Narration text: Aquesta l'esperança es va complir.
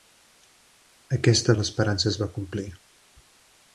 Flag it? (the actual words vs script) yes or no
no